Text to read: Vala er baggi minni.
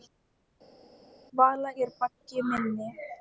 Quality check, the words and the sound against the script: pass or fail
pass